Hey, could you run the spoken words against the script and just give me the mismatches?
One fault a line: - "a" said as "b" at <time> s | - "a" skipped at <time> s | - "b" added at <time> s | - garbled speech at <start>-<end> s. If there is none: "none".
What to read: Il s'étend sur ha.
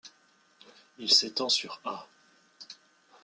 none